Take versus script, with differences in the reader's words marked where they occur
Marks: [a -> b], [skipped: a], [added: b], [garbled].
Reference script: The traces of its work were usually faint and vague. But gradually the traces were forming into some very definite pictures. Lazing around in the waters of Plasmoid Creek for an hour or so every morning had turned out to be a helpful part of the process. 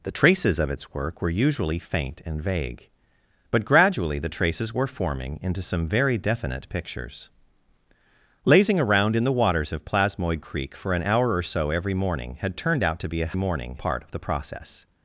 The traces of its work were usually faint and vague. But gradually the traces were forming into some very definite pictures. Lazing around in the waters of Plasmoid Creek for an hour or so every morning had turned out to be a [helpful -> morning] part of the process.